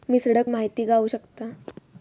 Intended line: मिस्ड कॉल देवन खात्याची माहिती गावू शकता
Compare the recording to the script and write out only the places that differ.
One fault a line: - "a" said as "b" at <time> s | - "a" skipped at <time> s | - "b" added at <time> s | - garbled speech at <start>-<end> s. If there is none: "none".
- "कॉल देवन खात्याची" skipped at 0.4 s